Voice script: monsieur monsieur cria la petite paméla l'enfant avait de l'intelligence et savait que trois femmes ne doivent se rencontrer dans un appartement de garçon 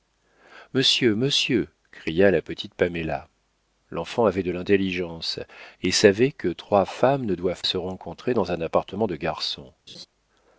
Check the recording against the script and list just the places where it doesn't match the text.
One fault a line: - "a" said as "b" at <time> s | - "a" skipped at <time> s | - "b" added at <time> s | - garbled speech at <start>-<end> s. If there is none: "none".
none